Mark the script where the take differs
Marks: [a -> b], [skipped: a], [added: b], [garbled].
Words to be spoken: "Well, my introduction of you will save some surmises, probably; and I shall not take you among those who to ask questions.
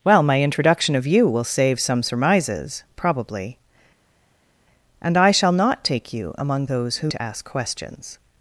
"Well, my introduction of you will save some surmises, probably; and I shall not take you among those who to ask questions.